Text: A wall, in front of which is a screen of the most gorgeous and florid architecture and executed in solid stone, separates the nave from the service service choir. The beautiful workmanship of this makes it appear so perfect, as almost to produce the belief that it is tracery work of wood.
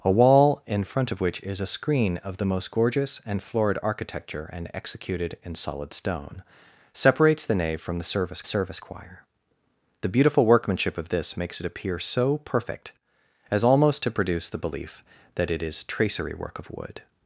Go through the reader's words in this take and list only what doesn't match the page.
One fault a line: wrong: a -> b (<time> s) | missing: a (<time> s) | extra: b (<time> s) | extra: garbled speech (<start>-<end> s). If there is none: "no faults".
no faults